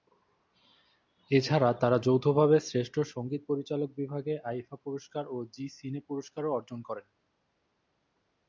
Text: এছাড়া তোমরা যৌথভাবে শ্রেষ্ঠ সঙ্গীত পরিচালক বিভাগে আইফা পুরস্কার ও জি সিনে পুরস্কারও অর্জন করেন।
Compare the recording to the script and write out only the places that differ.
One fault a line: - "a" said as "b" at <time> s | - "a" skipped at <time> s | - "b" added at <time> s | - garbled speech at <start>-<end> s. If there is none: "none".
- "তোমরা" said as "তারা" at 1.7 s